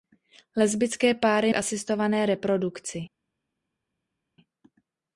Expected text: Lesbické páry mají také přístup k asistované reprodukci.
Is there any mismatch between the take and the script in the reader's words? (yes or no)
yes